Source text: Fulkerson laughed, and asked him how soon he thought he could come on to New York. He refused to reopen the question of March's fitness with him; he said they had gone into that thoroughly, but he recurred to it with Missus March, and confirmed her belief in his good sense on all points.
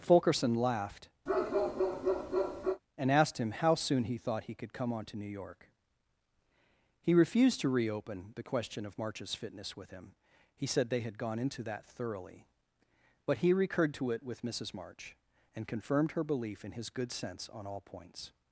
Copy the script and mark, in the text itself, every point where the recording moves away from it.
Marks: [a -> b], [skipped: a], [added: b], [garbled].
Fulkerson laughed, and asked him how soon he thought he could come on to New York. He refused to reopen the question of March's fitness with him; he said they had gone into that thoroughly, but he recurred to it with Missus March, and confirmed her belief in his good sense on all points.